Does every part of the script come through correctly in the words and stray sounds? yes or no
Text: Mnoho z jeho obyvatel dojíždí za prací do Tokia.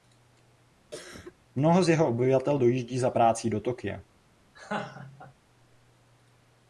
no